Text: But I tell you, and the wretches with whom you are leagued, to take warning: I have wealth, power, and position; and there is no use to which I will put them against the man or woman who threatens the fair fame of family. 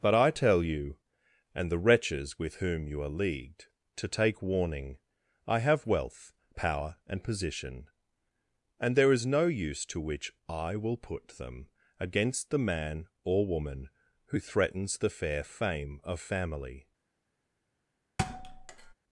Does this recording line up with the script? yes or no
yes